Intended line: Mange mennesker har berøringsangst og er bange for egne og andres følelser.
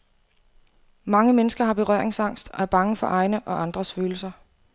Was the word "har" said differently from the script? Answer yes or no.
no